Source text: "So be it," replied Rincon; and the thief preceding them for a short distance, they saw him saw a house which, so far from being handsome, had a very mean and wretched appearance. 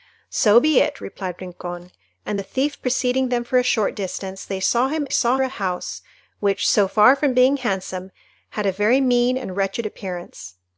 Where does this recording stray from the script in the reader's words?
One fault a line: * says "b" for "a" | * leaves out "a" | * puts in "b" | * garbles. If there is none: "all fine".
all fine